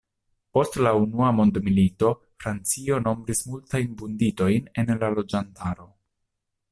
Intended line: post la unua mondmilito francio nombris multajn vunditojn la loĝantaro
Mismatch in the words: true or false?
true